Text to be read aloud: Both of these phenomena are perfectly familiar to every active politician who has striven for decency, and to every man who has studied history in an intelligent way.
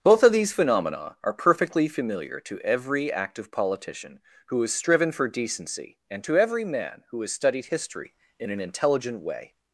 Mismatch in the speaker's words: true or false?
false